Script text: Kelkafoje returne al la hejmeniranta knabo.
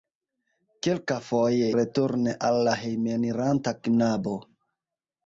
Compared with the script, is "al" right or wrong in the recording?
right